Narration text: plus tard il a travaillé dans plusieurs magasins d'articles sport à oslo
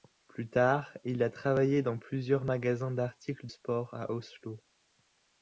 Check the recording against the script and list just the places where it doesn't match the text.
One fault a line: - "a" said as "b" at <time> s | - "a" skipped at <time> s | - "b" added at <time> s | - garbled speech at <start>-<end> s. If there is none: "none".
none